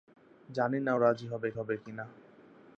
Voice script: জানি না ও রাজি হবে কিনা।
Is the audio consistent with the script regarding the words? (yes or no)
no